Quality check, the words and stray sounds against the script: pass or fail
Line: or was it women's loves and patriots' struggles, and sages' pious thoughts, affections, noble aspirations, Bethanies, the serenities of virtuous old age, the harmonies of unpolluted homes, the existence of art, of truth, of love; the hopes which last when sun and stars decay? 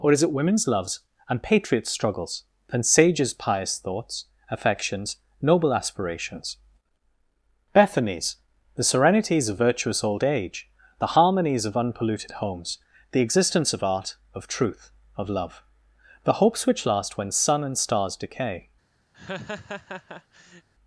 fail